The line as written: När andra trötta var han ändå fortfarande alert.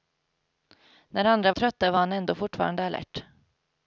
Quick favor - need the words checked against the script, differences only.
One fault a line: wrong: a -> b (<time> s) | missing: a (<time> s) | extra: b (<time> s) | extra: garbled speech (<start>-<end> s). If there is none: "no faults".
no faults